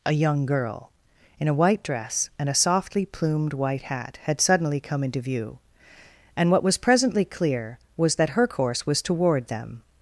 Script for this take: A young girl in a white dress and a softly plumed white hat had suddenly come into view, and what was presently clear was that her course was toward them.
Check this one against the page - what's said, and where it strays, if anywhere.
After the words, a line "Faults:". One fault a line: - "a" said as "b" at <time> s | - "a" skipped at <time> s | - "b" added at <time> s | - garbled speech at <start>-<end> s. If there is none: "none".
A young girl in a white dress and a softly plumed white hat had suddenly come into view, and what was presently clear was that her course was toward them.
Faults:
none